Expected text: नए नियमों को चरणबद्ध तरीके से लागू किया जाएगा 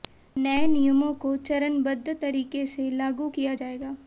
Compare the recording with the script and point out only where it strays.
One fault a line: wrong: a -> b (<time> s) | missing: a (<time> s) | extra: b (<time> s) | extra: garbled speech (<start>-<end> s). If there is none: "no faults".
no faults